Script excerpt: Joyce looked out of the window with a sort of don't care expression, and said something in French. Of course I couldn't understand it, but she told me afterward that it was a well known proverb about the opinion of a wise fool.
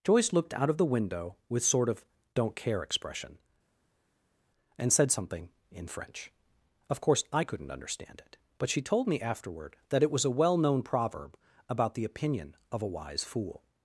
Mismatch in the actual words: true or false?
true